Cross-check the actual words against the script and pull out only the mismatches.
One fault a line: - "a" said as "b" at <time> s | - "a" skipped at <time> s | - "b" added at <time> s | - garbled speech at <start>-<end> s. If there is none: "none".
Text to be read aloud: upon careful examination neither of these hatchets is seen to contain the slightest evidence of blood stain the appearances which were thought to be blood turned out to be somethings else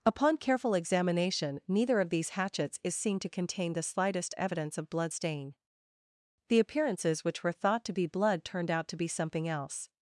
- "somethings" said as "something" at 9.1 s